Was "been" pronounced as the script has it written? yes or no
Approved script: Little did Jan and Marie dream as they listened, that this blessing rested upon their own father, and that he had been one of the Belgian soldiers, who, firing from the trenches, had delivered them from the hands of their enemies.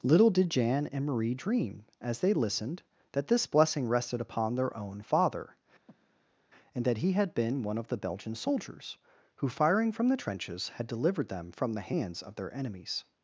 yes